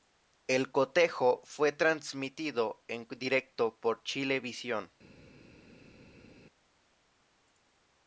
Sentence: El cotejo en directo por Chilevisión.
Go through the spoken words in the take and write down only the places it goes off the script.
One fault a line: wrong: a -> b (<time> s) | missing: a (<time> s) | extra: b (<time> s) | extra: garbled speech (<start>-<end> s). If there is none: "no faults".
extra: fue transmitido (1.4 s)